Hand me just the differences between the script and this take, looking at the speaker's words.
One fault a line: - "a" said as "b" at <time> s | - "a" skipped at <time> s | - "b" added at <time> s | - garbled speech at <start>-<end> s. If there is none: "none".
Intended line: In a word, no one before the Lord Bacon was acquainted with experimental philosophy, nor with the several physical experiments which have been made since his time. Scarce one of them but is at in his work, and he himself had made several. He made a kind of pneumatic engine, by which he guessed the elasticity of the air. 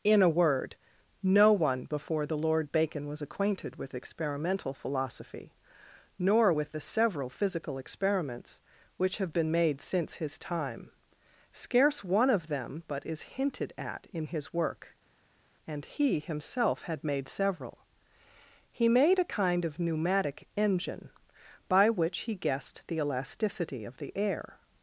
- "hinted" added at 13.3 s